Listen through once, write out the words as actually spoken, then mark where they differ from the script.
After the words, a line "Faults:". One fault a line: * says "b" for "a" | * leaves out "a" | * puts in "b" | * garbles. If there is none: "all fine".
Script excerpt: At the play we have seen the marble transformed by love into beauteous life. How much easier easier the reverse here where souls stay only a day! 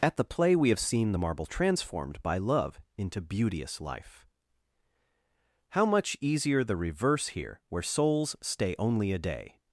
At the play we have seen the marble transformed by love into beauteous life. How much easier the reverse here where souls stay only a day!
Faults:
* leaves out "easier"